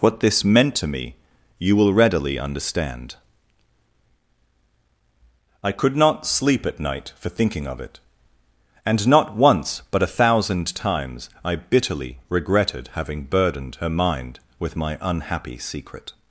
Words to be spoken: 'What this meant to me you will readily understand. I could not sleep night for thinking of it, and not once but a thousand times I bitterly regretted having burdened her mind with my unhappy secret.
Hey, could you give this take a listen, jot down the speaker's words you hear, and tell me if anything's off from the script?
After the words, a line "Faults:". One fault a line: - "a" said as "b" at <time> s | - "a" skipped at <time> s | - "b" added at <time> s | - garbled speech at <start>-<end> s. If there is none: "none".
'What this meant to me you will readily understand. I could not sleep at night for thinking of it, and not once but a thousand times I bitterly regretted having burdened her mind with my unhappy secret.
Faults:
- "at" added at 6.7 s